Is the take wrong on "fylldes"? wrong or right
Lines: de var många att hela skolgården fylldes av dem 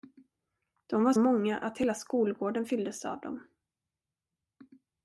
right